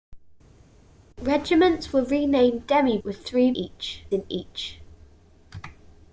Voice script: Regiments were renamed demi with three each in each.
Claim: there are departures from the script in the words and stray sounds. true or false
false